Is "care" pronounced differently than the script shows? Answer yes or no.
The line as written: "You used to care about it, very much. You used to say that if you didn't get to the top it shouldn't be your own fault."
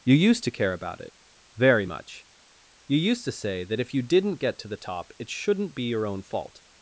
no